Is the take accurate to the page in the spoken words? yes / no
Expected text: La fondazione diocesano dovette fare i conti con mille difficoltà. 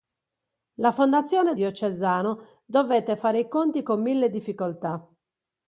yes